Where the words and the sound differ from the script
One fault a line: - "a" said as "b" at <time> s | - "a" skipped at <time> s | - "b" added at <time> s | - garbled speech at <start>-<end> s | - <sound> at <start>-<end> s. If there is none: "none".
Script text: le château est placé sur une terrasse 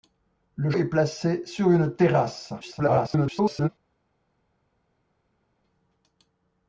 - "château" skipped at 0.7 s
- garbled speech at 2.6-3.7 s